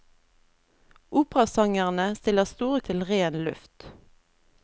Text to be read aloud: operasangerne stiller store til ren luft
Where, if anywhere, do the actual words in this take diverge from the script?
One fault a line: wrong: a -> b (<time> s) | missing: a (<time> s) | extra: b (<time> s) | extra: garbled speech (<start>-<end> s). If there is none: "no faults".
no faults